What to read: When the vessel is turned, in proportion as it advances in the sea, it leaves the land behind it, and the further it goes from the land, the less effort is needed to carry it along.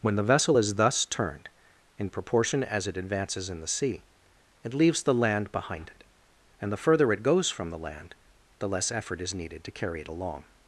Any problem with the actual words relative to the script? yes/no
yes